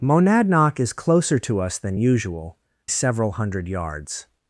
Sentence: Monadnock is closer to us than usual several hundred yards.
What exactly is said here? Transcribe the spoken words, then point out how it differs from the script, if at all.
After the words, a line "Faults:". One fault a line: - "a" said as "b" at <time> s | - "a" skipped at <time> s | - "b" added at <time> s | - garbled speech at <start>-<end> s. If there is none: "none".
Monadnock is closer to us than usual several hundred yards.
Faults:
none